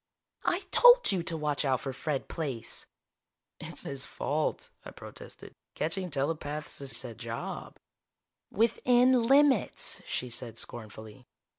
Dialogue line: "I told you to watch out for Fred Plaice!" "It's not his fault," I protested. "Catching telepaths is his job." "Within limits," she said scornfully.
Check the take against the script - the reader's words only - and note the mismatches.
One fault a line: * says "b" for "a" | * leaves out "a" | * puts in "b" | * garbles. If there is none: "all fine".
* leaves out "not"
* says "said" for "his"